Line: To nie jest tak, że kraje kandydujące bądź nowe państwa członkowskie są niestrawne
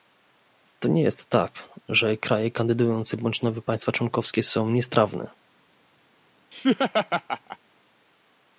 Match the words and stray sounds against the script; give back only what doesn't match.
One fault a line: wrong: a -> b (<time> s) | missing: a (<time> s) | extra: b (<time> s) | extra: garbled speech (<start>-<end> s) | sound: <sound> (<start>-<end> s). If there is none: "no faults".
sound: laugh (6.5-7.6 s)